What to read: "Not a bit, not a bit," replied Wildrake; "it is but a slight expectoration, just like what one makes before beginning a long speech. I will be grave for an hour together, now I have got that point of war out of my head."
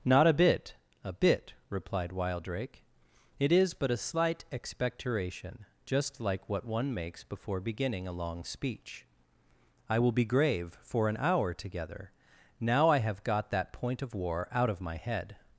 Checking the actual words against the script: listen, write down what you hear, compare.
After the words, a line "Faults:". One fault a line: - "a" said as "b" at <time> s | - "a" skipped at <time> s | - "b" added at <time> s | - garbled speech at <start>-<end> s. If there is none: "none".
"Not a bit, a bit," replied Wildrake; "it is but a slight expectoration, just like what one makes before beginning a long speech. I will be grave for an hour together, now I have got that point of war out of my head."
Faults:
- "not" skipped at 0.8 s